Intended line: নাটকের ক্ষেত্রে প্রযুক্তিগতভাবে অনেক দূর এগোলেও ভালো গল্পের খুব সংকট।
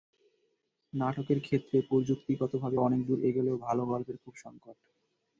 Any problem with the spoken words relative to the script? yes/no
no